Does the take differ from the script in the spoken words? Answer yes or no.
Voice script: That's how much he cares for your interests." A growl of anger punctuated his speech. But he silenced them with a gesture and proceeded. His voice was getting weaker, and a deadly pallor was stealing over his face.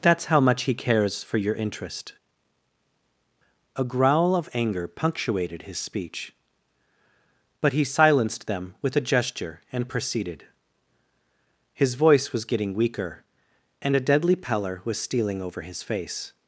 yes